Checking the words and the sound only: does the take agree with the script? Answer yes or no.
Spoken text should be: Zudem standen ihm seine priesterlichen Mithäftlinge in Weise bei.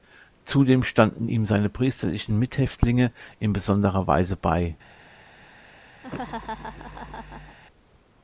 no